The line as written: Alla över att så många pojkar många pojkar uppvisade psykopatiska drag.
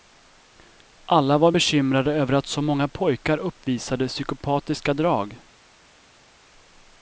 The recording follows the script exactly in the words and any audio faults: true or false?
false